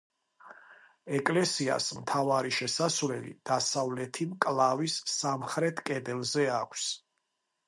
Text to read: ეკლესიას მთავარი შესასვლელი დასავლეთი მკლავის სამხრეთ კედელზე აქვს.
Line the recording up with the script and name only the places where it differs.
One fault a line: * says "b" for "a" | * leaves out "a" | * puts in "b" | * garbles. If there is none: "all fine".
all fine